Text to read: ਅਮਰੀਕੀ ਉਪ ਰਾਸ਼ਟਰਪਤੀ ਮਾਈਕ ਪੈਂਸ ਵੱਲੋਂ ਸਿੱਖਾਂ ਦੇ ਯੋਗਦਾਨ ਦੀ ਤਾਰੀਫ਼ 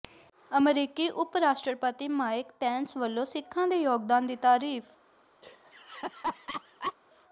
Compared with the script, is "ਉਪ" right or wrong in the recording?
right